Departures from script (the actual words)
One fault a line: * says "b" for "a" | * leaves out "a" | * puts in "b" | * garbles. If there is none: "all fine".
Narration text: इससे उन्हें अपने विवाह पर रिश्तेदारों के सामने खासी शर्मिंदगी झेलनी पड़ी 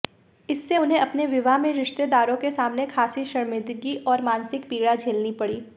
* says "में" for "पर"
* puts in "और मानसिक पीड़ा"